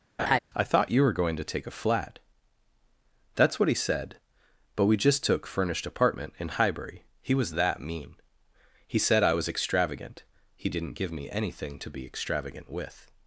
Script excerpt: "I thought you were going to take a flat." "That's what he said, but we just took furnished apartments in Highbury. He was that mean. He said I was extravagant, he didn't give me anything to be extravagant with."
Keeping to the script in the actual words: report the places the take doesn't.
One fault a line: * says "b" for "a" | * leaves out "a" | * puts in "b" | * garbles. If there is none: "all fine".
* says "apartment" for "apartments"